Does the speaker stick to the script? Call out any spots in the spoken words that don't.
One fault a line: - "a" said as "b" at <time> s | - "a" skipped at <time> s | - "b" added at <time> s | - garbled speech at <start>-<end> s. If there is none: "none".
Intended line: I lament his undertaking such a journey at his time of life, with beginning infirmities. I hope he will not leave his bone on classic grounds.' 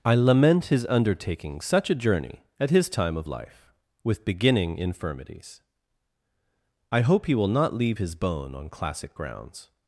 none